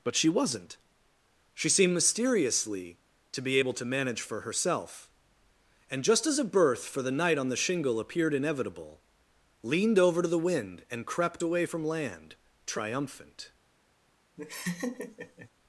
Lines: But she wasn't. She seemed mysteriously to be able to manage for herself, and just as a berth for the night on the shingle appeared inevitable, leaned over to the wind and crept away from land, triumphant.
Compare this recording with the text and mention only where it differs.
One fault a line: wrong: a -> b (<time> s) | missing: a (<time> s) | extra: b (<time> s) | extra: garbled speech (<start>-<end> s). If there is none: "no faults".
no faults